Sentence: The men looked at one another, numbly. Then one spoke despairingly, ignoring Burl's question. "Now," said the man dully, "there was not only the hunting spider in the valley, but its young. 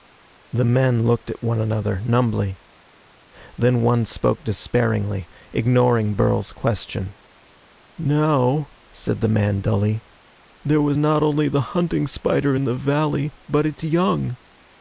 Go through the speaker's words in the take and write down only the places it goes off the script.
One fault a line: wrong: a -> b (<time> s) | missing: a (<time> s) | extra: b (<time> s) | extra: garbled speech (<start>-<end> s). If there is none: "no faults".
no faults